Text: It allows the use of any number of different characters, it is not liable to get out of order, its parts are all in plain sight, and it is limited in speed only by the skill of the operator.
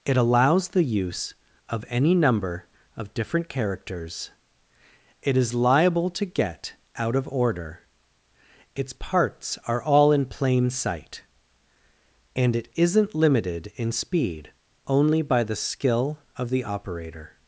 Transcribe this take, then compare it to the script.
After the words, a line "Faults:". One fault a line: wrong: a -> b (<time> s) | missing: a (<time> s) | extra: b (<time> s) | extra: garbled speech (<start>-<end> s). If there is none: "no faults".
It allows the use of any number of different characters, it is liable to get out of order, its parts are all in plain sight, and it isn't limited in speed only by the skill of the operator.
Faults:
missing: not (5.5 s)
wrong: is -> isn't (12.7 s)